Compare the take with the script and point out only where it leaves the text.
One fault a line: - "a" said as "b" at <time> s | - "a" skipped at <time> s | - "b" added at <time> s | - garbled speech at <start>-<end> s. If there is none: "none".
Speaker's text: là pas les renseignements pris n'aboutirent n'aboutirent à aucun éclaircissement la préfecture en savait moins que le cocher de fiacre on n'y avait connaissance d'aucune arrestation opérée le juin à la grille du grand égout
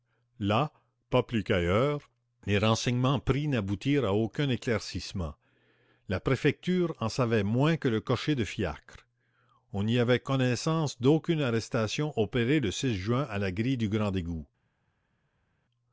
- "plus qu'ailleurs" added at 1.2 s
- "n'aboutirent" skipped at 4.0 s